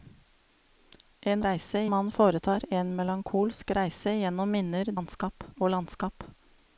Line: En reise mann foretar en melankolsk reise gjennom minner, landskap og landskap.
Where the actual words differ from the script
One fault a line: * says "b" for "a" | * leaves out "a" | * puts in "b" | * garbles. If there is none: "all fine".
all fine